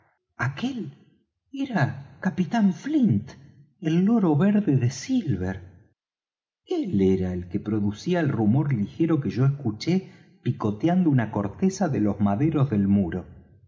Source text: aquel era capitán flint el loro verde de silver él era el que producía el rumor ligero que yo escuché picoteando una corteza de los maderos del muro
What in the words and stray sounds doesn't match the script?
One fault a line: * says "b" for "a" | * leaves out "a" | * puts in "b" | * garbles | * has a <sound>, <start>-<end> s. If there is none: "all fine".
all fine